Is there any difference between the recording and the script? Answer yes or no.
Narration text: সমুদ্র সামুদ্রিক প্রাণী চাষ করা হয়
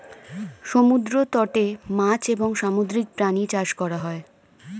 yes